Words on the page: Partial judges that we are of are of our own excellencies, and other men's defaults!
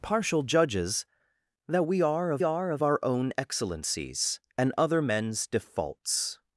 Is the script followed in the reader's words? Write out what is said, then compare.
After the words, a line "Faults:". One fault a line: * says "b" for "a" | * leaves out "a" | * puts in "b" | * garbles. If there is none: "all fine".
Partial judges that we are of are of our own excellencies, and other men's defaults!
Faults:
all fine